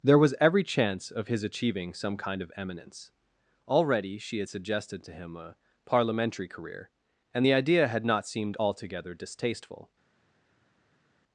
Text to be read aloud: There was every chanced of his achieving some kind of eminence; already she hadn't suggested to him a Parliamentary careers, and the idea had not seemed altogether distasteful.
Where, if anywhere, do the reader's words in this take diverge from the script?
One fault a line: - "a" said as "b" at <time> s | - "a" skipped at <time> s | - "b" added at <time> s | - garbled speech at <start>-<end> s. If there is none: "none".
- "chanced" said as "chance" at 0.6 s
- "hadn't" said as "had" at 4.4 s
- "careers" said as "career" at 6.5 s